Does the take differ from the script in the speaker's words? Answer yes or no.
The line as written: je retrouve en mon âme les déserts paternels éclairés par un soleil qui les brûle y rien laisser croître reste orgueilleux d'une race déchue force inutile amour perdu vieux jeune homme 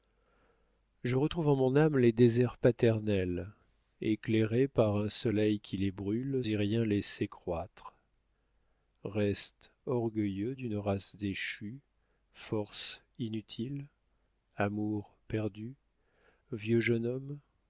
no